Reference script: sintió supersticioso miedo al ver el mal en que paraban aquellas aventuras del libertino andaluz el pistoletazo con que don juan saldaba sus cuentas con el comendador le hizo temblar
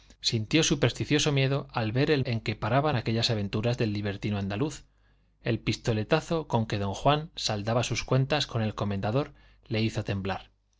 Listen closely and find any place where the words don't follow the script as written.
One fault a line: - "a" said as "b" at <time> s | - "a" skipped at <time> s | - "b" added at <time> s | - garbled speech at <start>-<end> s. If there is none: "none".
- "mal" skipped at 2.2 s